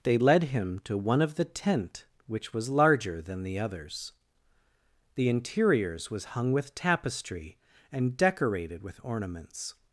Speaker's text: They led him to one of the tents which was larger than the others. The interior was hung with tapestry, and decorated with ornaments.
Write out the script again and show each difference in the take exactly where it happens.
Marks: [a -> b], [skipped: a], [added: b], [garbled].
They led him to one of the [tents -> tent] which was larger than the others. The [interior -> interiors] was hung with tapestry, and decorated with ornaments.